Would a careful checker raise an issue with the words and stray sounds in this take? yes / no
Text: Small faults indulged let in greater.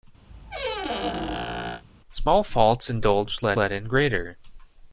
yes